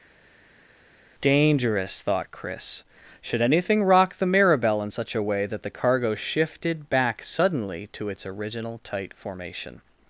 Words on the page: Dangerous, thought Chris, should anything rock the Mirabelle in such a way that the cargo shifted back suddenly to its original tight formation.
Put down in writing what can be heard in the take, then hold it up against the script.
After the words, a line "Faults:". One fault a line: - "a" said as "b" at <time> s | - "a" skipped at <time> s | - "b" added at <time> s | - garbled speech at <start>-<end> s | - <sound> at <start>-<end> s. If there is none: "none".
Dangerous, thought Chris, should anything rock the Mirabelle in such a way that the cargo shifted back suddenly to its original tight formation.
Faults:
none